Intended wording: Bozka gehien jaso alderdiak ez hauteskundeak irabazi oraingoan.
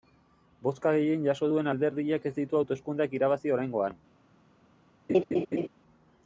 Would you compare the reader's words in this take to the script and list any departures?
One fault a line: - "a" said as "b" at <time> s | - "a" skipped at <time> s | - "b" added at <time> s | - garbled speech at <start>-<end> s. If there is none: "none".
- "duen" added at 1.5 s
- "ditu" added at 2.4 s